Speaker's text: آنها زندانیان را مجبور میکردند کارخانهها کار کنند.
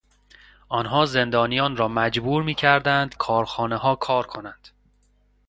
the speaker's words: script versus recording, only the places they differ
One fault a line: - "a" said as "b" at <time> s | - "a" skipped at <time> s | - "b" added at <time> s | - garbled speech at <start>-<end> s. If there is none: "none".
none